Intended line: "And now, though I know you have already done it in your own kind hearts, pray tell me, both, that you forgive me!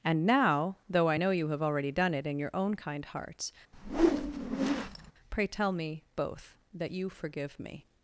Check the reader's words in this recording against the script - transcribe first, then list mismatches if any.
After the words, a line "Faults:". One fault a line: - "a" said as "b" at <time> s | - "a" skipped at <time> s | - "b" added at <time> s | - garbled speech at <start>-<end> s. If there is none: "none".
"And now, though I know you have already done it in your own kind hearts, pray tell me, both, that you forgive me!
Faults:
none